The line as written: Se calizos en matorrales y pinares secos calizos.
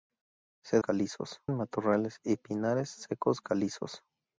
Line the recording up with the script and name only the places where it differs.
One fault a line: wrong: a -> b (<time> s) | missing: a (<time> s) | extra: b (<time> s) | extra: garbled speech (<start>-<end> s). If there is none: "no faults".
no faults